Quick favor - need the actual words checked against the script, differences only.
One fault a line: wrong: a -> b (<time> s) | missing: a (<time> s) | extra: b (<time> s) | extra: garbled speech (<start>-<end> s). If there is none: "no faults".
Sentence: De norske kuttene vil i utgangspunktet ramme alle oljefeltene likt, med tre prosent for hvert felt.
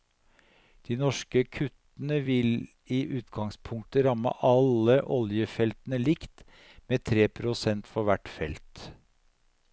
no faults